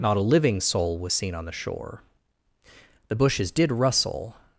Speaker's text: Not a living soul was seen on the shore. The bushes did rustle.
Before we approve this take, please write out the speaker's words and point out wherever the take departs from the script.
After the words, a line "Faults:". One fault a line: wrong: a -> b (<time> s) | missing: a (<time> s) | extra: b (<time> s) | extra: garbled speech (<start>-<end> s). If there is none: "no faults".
Not a living soul was seen on the shore. The bushes did rustle.
Faults:
no faults